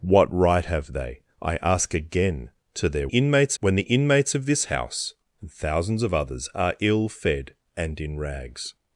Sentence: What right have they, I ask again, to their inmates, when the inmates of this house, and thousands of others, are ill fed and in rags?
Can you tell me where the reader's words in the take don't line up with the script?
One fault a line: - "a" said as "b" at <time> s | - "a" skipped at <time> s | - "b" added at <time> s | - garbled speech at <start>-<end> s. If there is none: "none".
none